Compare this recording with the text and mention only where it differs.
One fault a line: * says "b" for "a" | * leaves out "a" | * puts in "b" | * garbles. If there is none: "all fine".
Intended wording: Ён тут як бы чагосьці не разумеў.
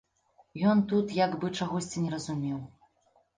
all fine